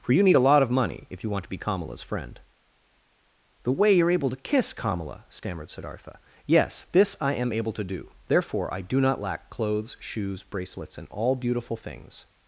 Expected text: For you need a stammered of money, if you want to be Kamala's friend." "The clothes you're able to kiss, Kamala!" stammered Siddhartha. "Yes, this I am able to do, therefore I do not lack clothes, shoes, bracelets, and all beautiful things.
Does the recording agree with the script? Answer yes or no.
no